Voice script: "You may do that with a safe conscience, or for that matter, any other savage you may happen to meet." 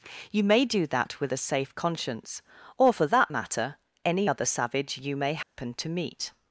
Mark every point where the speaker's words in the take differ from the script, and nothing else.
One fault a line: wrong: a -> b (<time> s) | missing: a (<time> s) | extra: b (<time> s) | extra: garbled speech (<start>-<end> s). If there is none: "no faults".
no faults